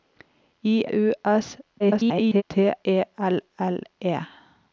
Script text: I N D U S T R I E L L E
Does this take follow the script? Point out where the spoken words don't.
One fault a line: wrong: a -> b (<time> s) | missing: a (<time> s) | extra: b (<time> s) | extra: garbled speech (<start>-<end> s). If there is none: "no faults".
missing: N D (0.8 s)
extra: garbled speech (1.8-2.4 s)
missing: I (2.7 s)